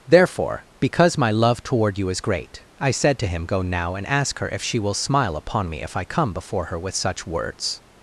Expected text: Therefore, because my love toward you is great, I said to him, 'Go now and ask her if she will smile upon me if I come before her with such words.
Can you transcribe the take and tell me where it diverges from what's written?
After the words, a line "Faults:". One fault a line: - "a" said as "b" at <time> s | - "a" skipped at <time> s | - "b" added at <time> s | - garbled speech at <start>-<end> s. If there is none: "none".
Therefore, because my love toward you is great, I said to him, 'Go now and ask her if she will smile upon me if I come before her with such words.
Faults:
none